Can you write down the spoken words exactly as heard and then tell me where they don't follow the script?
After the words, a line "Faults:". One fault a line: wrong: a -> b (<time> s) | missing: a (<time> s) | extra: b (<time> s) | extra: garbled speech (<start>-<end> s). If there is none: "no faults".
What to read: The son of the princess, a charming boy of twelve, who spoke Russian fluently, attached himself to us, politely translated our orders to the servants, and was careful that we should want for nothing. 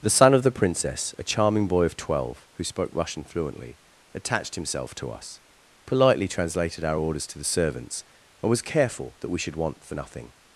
The son of the princess, a charming boy of twelve, who spoke Russian fluently, attached himself to us, politely translated our orders to the servants, and was careful that we should want for nothing.
Faults:
no faults